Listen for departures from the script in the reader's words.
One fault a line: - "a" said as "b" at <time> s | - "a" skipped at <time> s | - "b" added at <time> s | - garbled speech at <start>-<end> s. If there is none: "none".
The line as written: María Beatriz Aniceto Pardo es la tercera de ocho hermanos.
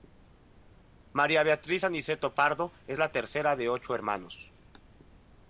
none